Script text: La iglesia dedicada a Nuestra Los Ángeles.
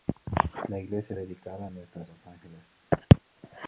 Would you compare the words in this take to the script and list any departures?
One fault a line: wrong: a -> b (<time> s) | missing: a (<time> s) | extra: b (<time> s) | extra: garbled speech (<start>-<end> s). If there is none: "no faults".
no faults